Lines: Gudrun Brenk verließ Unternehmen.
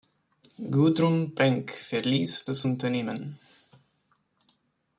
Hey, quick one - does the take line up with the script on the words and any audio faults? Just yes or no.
no